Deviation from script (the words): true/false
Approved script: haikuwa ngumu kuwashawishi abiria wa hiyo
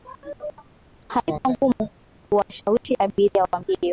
false